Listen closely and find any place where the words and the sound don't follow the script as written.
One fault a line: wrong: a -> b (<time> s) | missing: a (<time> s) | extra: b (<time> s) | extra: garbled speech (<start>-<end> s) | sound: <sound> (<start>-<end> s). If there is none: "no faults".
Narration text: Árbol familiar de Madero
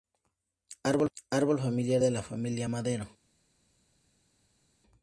extra: la familia (2.1 s)